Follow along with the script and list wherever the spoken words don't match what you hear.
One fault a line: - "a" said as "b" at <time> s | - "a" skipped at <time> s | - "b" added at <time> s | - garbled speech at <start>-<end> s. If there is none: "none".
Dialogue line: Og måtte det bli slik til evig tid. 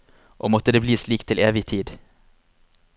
none